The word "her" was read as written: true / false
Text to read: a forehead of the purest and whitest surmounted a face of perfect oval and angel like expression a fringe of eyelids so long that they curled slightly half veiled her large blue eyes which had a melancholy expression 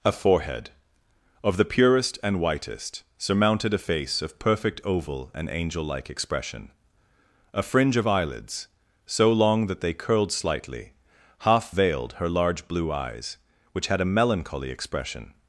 true